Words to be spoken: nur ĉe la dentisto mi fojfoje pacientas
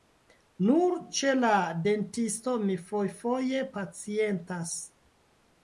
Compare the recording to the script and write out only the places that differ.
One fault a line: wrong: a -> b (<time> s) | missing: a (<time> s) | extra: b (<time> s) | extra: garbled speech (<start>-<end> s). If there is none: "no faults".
no faults